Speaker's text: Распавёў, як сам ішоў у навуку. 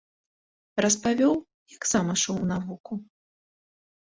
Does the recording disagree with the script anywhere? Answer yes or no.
no